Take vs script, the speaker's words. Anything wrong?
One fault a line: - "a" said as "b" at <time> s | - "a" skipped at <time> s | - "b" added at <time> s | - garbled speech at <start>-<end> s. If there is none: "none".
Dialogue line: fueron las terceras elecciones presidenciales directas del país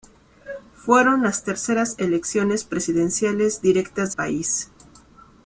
- "del" skipped at 4.1 s